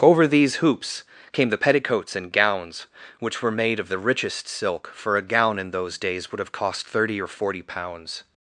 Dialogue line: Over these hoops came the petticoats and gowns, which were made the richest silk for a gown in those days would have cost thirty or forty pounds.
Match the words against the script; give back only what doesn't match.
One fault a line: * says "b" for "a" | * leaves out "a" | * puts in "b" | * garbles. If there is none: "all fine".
* puts in "of"